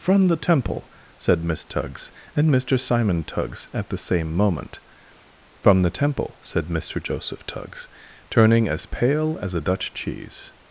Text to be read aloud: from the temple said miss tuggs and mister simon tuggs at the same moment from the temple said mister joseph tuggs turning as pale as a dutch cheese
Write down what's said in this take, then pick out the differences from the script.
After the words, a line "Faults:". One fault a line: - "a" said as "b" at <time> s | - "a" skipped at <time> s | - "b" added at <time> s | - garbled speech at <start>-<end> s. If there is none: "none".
from the temple said miss tuggs and mister simon tuggs at the same moment from the temple said mister joseph tuggs turning as pale as a dutch cheese
Faults:
none